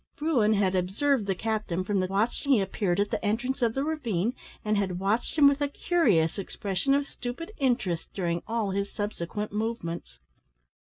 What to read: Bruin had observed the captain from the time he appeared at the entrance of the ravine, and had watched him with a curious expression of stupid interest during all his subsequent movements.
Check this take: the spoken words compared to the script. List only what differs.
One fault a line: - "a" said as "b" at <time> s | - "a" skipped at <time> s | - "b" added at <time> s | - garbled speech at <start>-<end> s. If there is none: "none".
- "time" said as "watched" at 2.1 s